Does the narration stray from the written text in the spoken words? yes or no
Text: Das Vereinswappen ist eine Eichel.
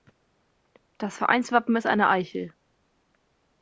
no